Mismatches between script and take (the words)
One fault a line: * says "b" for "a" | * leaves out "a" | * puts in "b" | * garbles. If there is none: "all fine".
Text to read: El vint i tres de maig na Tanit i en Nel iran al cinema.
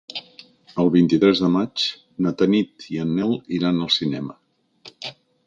all fine